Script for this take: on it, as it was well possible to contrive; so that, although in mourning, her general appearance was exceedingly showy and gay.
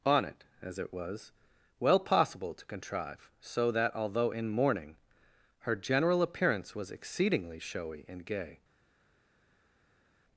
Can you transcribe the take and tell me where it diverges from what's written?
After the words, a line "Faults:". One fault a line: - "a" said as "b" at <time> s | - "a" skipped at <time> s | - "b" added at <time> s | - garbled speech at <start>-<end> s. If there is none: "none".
on it, as it was well possible to contrive; so that, although in mourning, her general appearance was exceedingly showy and gay.
Faults:
none